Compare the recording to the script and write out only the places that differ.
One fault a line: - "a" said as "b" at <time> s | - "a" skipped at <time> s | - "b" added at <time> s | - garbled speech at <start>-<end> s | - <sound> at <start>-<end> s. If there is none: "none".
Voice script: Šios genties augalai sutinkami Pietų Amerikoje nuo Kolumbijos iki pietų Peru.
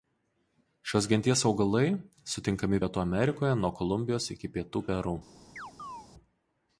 - chirp at 5.6-6.1 s